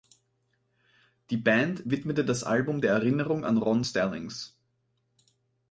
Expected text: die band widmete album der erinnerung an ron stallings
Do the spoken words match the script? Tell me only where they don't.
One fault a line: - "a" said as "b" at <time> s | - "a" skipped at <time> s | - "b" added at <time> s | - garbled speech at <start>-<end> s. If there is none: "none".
- "das" added at 2.2 s